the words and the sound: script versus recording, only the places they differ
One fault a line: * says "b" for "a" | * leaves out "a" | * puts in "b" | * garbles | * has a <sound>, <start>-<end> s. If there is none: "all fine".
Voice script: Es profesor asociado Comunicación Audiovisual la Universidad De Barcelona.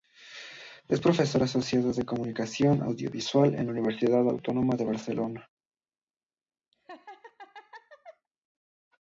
* puts in "de"
* puts in "en"
* puts in "Autónoma"
* has a laugh, 6.7-8.3 s